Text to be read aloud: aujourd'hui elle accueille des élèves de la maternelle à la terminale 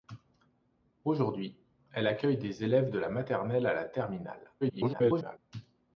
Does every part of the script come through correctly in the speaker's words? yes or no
no